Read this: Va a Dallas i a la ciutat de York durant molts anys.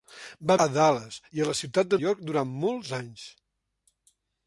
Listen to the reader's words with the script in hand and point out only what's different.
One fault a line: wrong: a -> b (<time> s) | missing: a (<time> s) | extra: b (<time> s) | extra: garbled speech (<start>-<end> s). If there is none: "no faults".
no faults